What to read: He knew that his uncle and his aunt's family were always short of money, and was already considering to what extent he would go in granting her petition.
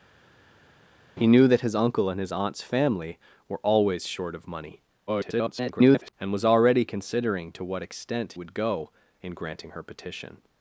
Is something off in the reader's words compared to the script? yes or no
yes